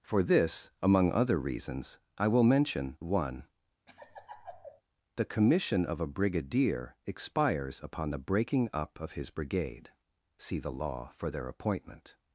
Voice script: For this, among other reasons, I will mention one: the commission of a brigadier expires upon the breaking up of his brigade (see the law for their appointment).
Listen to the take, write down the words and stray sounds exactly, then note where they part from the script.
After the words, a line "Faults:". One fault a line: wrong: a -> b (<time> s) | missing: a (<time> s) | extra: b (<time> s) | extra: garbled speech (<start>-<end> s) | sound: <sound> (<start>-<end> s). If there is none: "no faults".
For this, among other reasons, I will mention one: the commission of a brigadier expires upon the breaking up of his brigade (see the law for their appointment).
Faults:
sound: laugh (3.9-4.8 s)